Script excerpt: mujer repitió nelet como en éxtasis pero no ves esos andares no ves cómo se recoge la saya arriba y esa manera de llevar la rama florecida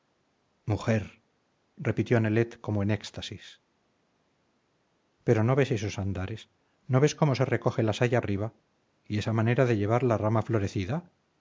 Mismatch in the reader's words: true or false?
false